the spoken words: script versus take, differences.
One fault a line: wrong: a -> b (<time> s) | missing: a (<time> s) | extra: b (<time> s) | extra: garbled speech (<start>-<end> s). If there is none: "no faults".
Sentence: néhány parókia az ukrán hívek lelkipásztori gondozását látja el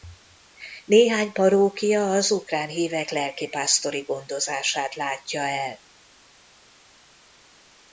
no faults